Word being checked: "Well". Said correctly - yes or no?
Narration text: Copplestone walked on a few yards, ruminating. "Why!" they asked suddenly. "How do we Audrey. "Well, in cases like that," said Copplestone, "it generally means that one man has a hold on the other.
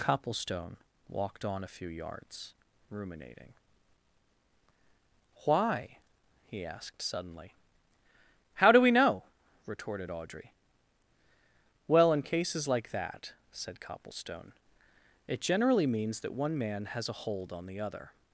yes